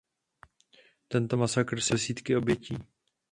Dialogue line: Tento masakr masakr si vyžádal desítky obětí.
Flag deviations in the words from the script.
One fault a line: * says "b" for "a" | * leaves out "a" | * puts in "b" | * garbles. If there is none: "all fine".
* leaves out "masakr"